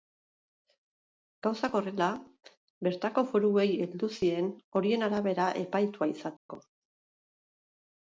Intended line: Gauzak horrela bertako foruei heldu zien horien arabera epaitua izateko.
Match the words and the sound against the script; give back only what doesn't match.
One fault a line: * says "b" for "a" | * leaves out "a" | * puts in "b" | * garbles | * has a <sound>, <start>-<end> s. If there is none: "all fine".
* has a dropout, 6.4-6.5 s